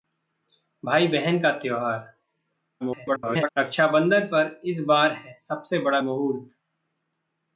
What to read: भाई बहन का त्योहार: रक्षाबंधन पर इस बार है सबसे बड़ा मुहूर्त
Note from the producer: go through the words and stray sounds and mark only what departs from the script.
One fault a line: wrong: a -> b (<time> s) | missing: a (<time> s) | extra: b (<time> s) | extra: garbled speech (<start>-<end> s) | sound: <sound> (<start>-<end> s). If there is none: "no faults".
extra: garbled speech (2.8-3.5 s)